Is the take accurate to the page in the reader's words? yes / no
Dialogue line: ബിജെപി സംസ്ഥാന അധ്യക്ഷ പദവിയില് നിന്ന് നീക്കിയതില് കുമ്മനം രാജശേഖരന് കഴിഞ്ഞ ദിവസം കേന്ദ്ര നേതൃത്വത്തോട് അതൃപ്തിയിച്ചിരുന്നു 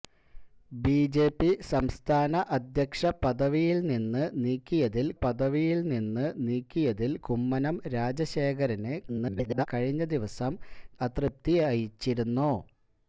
no